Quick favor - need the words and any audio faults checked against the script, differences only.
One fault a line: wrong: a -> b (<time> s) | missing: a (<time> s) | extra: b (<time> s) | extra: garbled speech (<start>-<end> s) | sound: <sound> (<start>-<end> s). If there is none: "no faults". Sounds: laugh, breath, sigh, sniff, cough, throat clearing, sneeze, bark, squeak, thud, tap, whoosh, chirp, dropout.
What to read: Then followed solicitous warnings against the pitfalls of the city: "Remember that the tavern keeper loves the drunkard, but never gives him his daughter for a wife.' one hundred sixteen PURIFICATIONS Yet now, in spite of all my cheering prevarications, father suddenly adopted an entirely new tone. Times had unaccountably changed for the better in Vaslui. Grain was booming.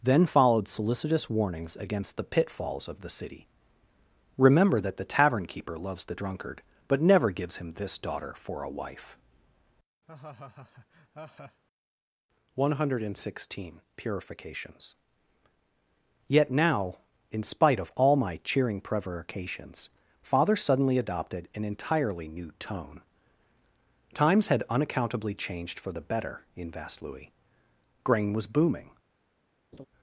wrong: his -> this (7.7 s)
sound: laugh (10.1-11.6 s)
sound: laugh (29.7-29.9 s)